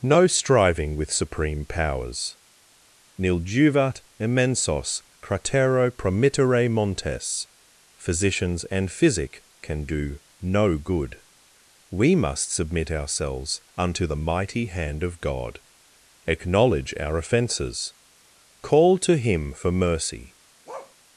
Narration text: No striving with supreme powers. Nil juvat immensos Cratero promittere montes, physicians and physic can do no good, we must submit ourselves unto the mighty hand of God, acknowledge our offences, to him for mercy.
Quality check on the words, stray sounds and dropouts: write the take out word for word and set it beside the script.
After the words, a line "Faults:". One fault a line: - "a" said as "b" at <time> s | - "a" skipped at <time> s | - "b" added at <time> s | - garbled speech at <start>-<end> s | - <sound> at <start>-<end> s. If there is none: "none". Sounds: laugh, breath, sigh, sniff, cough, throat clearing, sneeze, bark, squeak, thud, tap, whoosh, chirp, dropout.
No striving with supreme powers. Nil juvat immensos Cratero promittere montes, physicians and physic can do no good, we must submit ourselves unto the mighty hand of God, acknowledge our offences, call to him for mercy.
Faults:
- "call" added at 18.6 s
- bark at 20.7-21.0 s